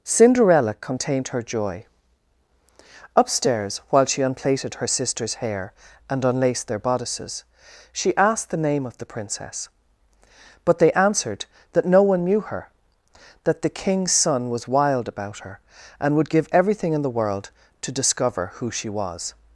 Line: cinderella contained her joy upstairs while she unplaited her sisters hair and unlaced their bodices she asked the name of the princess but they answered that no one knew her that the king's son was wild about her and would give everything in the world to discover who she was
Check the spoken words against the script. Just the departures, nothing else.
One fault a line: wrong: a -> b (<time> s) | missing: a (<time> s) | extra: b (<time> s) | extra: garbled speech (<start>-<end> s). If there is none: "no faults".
no faults